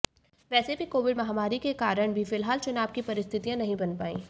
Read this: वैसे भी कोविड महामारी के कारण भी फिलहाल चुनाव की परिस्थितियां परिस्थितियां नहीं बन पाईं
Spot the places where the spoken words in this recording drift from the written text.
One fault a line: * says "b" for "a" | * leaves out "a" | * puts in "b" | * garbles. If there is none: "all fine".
* leaves out "परिस्थितियां"